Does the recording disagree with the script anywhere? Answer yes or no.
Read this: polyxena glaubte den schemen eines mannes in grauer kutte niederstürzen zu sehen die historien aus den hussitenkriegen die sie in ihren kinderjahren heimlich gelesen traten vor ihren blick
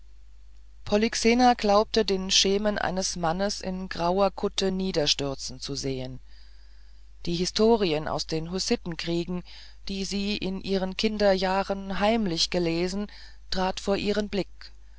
no